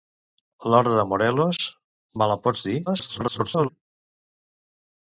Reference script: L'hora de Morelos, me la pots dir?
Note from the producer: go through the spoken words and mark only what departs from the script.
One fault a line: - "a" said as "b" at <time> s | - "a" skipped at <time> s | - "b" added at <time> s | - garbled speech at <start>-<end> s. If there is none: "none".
- garbled speech at 2.9-3.7 s